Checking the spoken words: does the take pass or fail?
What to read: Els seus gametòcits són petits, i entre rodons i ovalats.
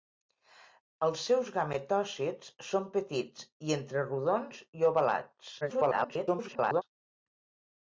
fail